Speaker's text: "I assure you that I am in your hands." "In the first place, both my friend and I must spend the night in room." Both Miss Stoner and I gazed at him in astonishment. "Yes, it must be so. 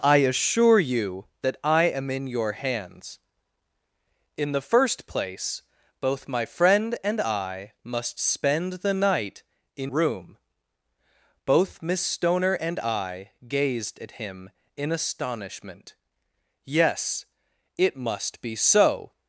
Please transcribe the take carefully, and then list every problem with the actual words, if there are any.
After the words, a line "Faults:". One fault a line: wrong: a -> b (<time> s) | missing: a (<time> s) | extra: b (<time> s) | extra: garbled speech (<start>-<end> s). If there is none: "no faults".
"I assure you that I am in your hands." "In the first place, both my friend and I must spend the night in room." Both Miss Stoner and I gazed at him in astonishment. "Yes, it must be so.
Faults:
no faults